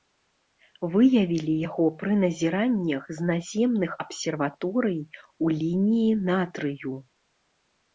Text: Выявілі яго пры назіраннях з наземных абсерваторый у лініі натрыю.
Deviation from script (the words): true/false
false